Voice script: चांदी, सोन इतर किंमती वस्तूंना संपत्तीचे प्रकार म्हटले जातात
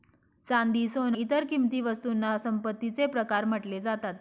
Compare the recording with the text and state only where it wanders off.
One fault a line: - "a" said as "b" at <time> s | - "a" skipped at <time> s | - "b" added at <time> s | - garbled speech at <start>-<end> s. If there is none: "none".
none